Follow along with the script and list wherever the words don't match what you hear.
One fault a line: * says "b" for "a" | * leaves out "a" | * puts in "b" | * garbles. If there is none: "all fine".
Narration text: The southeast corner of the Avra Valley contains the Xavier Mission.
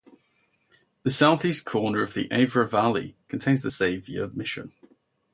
all fine